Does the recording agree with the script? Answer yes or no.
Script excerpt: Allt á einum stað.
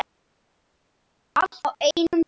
yes